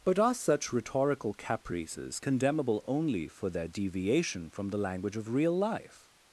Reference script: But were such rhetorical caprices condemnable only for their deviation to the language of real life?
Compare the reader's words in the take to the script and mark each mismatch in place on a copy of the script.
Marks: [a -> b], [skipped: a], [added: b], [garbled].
But [were -> are] such rhetorical caprices condemnable only for their deviation [to -> from] the language of real life?